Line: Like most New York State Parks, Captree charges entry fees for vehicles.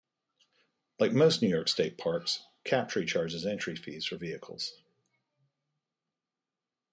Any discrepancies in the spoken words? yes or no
no